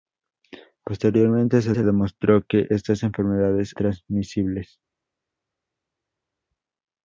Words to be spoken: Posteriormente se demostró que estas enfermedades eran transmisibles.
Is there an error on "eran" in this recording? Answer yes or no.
yes